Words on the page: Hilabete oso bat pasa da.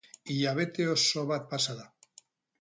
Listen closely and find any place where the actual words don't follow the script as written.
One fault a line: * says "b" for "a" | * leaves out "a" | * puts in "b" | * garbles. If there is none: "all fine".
all fine